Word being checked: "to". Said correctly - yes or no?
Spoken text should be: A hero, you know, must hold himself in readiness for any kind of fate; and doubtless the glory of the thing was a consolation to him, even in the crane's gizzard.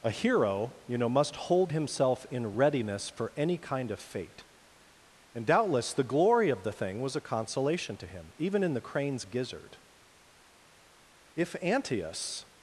yes